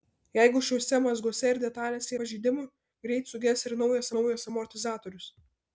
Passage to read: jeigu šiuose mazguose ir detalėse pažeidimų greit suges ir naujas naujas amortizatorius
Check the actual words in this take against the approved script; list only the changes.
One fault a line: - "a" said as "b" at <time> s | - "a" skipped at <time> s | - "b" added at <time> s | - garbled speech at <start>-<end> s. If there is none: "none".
none